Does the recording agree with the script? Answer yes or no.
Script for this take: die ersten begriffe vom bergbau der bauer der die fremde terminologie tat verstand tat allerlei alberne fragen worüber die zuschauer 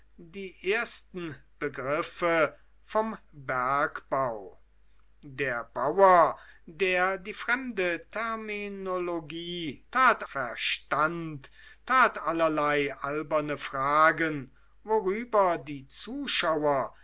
yes